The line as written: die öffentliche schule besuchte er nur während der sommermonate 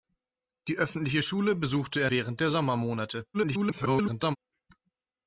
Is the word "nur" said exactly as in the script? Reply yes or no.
no